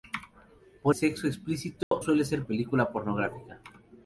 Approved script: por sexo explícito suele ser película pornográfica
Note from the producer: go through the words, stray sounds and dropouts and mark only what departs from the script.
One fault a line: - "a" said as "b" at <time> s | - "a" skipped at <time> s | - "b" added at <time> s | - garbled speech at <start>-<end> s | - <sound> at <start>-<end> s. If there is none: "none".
- dropout at 1.8-1.9 s